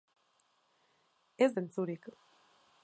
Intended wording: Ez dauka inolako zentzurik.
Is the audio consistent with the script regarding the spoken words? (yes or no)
no